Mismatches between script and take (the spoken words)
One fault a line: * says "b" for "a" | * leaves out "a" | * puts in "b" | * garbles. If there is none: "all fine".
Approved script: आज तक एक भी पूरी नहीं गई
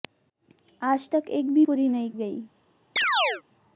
all fine